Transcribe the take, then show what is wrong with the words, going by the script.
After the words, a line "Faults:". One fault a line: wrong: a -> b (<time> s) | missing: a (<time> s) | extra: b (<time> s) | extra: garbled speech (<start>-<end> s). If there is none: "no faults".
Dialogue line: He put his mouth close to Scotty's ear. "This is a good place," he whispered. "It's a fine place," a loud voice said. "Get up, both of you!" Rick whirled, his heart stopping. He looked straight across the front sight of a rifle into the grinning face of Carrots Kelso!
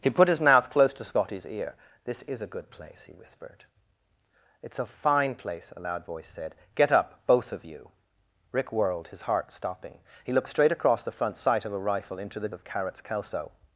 He put his mouth close to Scotty's ear. "This is a good place," he whispered. "It's a fine place," a loud voice said. "Get up, both of you!" Rick whirled, his heart stopping. He looked straight across the front sight of a rifle into the of Carrots Kelso!
Faults:
missing: grinning face (12.5 s)